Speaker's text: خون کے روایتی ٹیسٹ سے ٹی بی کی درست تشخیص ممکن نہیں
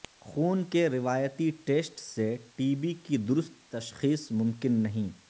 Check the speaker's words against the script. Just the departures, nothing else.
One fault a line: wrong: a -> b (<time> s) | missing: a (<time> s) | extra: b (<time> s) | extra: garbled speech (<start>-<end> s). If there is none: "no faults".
no faults